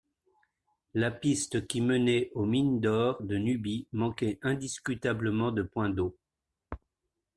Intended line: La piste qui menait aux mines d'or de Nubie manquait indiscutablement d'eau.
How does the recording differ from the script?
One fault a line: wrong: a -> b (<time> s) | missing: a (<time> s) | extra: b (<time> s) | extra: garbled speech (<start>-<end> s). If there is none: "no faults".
extra: de points (5.5 s)